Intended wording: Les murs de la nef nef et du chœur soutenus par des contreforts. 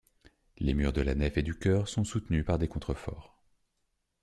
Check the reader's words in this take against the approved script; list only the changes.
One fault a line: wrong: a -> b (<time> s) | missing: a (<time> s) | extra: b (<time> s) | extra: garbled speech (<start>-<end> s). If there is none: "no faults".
missing: nef (1.4 s)
extra: sont (1.9 s)